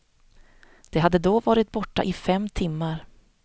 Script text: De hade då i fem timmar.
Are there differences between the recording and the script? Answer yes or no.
yes